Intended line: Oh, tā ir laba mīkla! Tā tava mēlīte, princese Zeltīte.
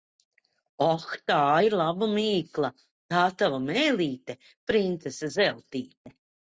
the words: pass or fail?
pass